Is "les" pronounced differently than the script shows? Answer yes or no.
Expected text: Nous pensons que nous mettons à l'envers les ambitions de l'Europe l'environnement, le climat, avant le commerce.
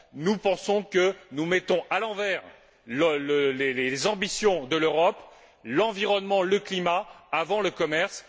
no